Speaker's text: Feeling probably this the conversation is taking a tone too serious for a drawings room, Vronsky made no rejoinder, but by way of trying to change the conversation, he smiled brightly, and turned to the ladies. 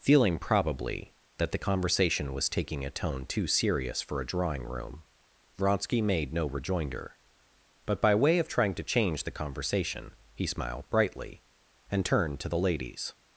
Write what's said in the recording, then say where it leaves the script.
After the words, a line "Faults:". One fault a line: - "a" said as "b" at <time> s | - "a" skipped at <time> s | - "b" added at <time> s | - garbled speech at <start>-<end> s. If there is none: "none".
Feeling probably that the conversation was taking a tone too serious for a drawing room, Vronsky made no rejoinder, but by way of trying to change the conversation, he smiled brightly, and turned to the ladies.
Faults:
- "this" said as "that" at 1.4 s
- "is" said as "was" at 2.3 s
- "drawings" said as "drawing" at 4.2 s